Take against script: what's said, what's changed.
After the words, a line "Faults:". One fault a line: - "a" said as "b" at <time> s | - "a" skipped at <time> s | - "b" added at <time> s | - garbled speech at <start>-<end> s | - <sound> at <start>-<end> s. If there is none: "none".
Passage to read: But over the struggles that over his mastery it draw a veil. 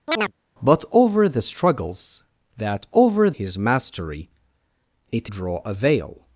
But over the struggles that over his mastery it draw a veil.
Faults:
- chirp at 0.1-0.3 s